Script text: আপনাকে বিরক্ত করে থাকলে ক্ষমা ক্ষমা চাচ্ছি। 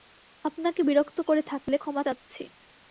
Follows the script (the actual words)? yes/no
no